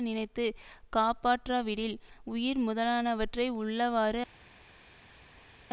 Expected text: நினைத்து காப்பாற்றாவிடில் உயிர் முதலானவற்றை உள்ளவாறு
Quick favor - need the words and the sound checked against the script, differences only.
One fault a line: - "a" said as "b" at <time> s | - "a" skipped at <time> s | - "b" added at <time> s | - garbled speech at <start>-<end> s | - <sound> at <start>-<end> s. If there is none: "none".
none